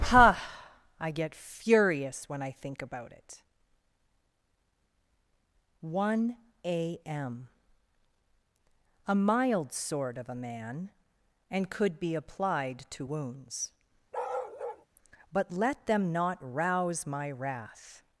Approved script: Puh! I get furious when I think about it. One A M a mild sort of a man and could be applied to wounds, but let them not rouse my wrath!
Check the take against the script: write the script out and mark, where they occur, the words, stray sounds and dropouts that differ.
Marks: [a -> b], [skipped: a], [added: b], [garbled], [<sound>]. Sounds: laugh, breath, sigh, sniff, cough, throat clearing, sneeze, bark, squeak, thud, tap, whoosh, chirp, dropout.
Puh! I get furious when I think about it. One A M a mild sort of a man and could be applied to wounds, [bark] but let them not rouse my wrath!